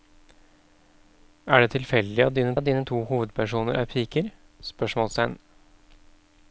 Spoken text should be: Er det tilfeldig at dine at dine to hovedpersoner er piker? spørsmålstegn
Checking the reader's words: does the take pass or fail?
pass